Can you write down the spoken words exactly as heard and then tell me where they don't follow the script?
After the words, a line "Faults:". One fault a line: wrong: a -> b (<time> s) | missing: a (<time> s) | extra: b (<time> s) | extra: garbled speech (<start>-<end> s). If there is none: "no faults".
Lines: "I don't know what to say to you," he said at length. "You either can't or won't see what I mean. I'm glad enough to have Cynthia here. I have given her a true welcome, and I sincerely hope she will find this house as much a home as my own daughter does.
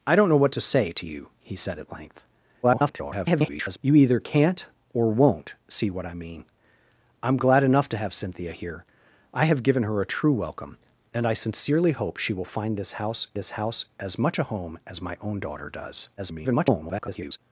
"I don't know what to say to you," he said at length. [garbled] "You either can't or won't see what I mean. I'm glad enough to have Cynthia here. I have given her a true welcome, and I sincerely hope she will find this house this house as much a home as my own daughter does. [garbled]
Faults:
extra: garbled speech (2.6-3.8 s)
extra: this house (13.4 s)
extra: garbled speech (16.2-17.4 s)